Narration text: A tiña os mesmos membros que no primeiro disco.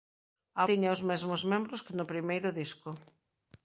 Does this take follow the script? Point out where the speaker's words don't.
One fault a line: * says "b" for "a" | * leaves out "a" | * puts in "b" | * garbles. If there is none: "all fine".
all fine